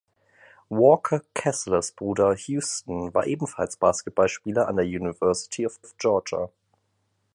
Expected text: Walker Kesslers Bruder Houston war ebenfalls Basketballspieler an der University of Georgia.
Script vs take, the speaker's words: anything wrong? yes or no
yes